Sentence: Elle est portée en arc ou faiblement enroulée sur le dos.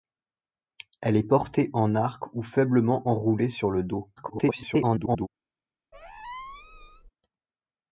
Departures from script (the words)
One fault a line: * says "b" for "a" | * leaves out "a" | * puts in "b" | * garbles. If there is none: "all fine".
* garbles